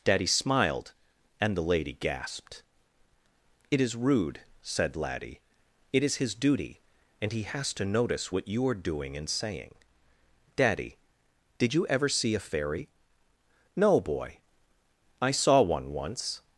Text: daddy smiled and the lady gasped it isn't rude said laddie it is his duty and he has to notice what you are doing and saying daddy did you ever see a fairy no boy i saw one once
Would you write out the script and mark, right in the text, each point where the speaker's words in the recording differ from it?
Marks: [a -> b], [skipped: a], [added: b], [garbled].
daddy smiled and the lady gasped it [isn't -> is] rude said laddie it is his duty and he has to notice what you are doing and saying daddy did you ever see a fairy no boy i saw one once